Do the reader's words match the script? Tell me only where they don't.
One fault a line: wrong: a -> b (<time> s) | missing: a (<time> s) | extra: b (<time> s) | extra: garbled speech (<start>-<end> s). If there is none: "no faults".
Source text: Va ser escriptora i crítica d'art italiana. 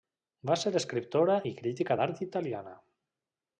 no faults